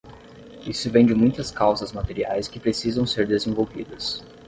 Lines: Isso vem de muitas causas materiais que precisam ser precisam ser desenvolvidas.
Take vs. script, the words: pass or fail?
fail